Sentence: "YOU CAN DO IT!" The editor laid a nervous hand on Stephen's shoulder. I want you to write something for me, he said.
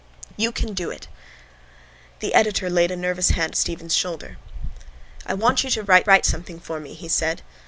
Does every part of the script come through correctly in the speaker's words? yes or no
no